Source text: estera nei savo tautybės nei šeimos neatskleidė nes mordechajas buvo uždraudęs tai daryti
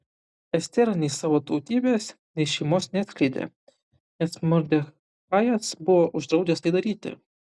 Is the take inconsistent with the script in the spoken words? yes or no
no